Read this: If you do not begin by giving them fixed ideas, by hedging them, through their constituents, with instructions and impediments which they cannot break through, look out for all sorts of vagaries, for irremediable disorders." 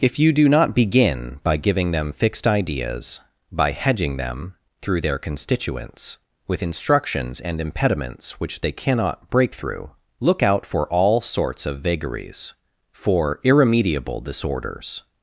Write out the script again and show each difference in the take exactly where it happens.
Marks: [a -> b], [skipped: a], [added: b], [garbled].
If you do not begin by giving them fixed ideas, by hedging them, through their constituents, with instructions and impediments which they cannot break through, look out for all sorts of vagaries, for irremediable disorders."